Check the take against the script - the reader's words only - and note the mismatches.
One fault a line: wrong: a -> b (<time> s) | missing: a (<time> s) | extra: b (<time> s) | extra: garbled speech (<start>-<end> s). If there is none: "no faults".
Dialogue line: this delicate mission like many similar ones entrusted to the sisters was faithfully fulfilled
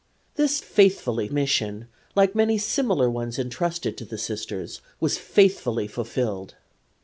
wrong: delicate -> faithfully (0.6 s)